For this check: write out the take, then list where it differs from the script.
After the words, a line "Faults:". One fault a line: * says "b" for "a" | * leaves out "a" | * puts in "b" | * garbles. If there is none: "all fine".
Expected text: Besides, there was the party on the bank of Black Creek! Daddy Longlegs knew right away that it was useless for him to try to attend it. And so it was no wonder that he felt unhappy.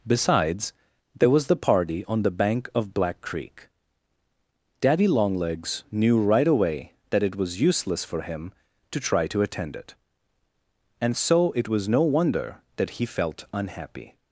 Besides, there was the party on the bank of Black Creek! Daddy Longlegs knew right away that it was useless for him to try to attend it. And so it was no wonder that he felt unhappy.
Faults:
all fine